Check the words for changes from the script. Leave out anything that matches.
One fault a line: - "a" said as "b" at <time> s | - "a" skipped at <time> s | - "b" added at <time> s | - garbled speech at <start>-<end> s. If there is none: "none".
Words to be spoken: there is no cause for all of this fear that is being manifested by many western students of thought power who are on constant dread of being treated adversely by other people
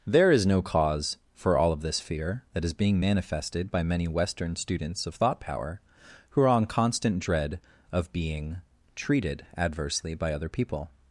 none